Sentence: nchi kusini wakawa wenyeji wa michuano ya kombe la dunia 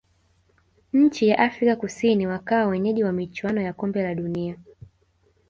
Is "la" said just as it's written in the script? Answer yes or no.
yes